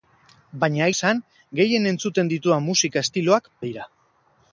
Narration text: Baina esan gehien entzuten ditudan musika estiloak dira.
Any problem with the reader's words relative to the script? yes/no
no